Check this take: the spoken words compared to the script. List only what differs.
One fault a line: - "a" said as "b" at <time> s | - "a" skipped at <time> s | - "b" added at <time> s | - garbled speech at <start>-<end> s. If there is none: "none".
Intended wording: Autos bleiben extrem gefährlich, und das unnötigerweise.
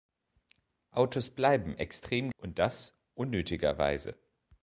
- "gefährlich" skipped at 2.3 s